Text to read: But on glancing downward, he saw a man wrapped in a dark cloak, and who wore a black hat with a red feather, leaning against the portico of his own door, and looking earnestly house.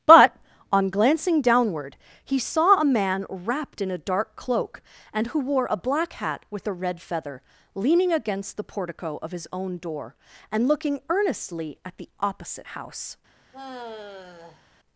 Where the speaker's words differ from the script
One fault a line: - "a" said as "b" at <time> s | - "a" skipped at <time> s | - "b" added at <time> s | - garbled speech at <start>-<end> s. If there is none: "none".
- "at the opposite" added at 11.8 s